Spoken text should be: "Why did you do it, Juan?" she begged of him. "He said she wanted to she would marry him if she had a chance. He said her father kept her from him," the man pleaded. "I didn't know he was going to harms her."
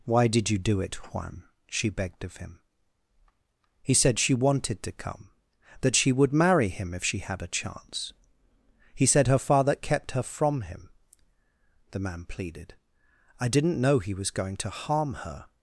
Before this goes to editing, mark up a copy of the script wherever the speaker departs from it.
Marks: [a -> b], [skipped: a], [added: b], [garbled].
"Why did you do it, Juan?" she begged of him. "He said she wanted to [added: come that] she would marry him if she had a chance. He said her father kept her from him," the man pleaded. "I didn't know he was going to [harms -> harm] her."